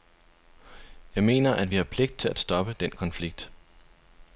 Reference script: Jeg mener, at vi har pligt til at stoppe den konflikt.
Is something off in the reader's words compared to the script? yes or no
no